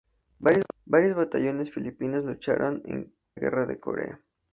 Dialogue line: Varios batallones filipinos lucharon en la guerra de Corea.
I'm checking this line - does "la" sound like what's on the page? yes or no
no